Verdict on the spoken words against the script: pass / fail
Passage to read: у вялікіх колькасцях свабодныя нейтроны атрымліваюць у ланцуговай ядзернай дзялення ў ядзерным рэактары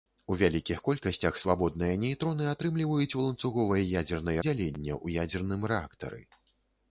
pass